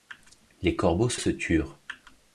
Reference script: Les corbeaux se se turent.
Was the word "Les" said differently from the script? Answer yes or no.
no